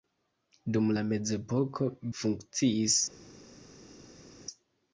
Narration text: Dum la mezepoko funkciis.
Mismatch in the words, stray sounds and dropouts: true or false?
false